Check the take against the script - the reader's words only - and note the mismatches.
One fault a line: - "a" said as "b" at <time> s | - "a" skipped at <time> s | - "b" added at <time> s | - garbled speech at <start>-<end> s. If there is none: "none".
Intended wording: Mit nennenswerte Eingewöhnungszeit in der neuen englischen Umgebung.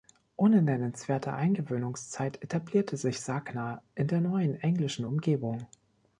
- "Mit" said as "Ohne" at 0.3 s
- "etablierte sich Sagna" added at 2.4 s